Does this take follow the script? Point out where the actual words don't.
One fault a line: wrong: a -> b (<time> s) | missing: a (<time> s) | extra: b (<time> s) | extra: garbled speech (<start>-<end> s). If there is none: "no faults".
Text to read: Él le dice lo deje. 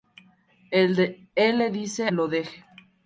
no faults